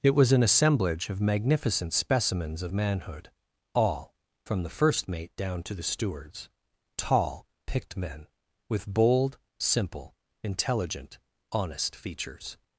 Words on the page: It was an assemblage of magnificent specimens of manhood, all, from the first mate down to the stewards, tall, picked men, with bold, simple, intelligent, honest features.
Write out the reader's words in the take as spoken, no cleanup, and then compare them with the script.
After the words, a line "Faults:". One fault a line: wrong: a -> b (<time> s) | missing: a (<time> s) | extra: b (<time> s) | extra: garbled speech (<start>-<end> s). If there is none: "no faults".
It was an assemblage of magnificent specimens of manhood, all, from the first mate down to the stewards, tall, picked men, with bold, simple, intelligent, honest features.
Faults:
no faults